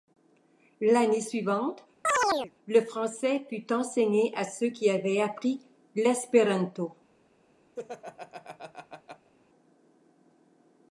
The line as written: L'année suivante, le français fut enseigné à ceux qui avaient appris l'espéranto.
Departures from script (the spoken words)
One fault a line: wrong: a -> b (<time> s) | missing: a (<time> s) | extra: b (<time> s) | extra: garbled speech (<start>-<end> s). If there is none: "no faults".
no faults